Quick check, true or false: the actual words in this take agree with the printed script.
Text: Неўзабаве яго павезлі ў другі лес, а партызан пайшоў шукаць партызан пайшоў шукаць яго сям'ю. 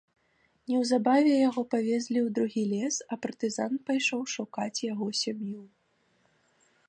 false